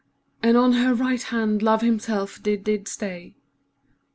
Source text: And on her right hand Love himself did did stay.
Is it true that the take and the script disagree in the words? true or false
false